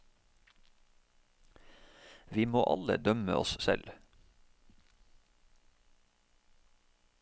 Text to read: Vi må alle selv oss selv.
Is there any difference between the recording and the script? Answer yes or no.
yes